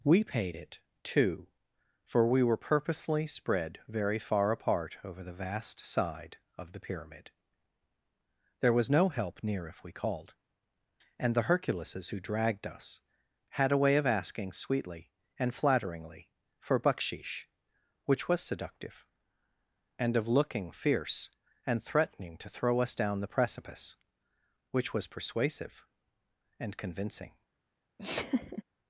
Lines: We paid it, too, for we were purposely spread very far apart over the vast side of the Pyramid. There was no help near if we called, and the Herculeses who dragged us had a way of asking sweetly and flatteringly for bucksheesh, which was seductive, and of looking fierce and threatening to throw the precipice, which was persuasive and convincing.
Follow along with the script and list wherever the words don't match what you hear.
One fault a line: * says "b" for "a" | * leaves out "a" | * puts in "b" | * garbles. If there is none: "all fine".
* puts in "us down"